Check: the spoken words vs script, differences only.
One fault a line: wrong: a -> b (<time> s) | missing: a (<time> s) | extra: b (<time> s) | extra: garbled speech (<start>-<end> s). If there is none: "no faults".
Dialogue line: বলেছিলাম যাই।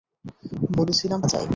no faults